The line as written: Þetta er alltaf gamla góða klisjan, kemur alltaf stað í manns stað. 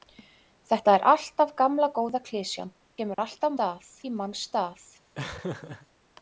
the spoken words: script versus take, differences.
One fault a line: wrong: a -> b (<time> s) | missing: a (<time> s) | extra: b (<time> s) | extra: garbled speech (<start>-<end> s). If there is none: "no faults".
no faults